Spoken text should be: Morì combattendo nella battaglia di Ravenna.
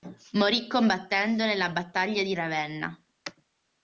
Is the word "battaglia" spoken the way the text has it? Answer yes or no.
yes